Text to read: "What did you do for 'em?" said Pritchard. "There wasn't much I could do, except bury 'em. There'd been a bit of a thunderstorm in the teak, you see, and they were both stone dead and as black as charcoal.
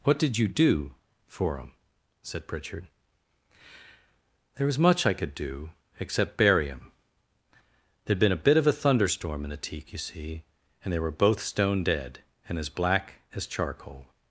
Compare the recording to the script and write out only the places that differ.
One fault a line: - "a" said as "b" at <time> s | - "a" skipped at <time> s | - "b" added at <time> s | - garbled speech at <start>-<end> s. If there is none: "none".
- "wasn't" said as "was" at 4.7 s